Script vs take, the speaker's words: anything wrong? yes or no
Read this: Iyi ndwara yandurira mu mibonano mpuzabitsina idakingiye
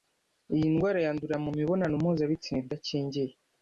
no